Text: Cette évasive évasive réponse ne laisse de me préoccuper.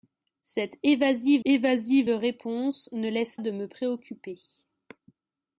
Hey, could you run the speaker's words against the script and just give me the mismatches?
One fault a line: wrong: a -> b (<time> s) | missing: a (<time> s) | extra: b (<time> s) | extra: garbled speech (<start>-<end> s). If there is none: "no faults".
no faults